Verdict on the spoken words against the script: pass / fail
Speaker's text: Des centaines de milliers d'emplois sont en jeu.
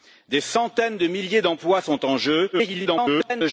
fail